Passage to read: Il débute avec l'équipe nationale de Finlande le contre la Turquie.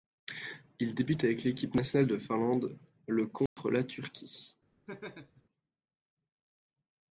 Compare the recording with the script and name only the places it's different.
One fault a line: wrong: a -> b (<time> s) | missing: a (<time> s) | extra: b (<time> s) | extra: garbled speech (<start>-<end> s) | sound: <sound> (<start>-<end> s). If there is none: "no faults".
sound: dropout (3.5-3.6 s)
sound: laugh (4.9-5.4 s)